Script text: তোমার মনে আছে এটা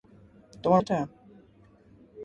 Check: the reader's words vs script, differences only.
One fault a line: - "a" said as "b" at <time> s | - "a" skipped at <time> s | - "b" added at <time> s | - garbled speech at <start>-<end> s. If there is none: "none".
- "মনে আছে" skipped at 0.8 s